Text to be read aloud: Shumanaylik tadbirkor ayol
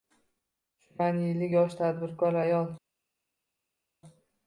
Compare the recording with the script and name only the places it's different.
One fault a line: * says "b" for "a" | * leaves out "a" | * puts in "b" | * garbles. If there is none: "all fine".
* puts in "yosh"